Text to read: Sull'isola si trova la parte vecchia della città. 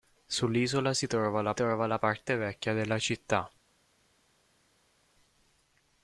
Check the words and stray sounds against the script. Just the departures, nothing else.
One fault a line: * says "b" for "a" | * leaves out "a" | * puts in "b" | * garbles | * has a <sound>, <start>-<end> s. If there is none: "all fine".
* puts in "trova la"